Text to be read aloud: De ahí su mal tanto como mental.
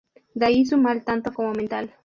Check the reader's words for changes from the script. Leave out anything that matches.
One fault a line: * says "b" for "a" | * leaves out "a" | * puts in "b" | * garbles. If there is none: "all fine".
all fine